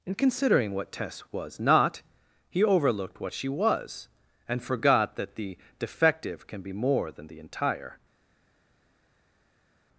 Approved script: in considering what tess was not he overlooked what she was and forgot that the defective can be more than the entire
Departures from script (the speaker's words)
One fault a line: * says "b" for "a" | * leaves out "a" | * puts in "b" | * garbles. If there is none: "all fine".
all fine